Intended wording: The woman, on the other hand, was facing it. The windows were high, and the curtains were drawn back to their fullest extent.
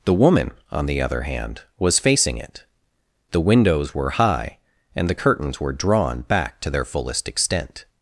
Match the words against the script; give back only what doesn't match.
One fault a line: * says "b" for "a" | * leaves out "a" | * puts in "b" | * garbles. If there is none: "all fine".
all fine